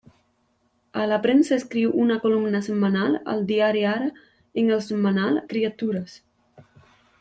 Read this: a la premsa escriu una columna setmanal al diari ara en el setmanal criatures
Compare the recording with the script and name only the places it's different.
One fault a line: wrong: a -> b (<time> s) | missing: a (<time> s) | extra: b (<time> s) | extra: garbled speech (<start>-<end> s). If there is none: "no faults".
no faults